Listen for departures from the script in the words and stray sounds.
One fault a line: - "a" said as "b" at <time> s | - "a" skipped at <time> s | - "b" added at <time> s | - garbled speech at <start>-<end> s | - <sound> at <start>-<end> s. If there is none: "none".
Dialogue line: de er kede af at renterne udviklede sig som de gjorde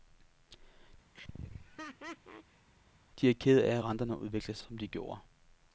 - laugh at 1.1-2.7 s
- "sig" skipped at 4.6 s